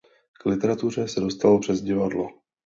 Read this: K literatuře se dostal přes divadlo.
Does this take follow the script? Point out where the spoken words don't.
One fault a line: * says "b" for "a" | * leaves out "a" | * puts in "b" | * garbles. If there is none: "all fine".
all fine